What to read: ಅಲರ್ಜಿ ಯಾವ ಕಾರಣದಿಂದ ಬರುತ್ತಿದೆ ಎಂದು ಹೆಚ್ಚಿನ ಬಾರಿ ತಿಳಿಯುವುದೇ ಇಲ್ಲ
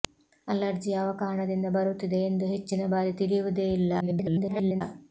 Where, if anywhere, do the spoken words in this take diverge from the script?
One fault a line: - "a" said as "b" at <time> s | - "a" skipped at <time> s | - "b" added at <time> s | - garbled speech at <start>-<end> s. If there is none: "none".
- garbled speech at 4.0-4.8 s